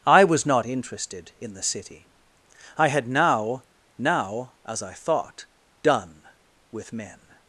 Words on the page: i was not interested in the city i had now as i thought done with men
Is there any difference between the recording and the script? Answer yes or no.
yes